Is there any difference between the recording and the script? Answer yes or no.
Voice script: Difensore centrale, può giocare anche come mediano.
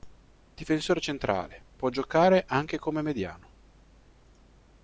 no